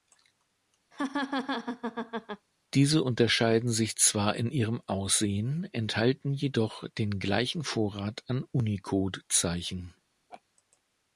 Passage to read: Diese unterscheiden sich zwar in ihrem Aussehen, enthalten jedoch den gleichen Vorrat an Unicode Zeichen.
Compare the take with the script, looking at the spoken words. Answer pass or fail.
pass